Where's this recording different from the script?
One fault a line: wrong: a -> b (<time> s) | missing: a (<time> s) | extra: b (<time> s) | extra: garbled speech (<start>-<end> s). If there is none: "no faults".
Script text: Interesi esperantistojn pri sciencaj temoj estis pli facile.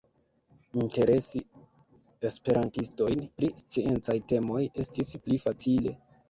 no faults